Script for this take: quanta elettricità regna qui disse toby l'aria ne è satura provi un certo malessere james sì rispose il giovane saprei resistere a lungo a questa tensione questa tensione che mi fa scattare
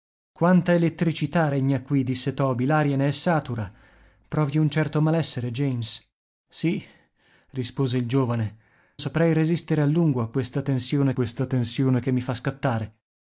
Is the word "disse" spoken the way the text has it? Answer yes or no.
yes